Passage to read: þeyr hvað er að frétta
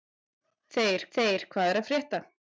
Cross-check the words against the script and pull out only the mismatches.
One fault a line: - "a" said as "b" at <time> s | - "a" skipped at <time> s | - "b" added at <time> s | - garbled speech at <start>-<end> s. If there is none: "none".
- "þeyr" added at 1.2 s